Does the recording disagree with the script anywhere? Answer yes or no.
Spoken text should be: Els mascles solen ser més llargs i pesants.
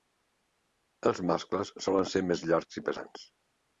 no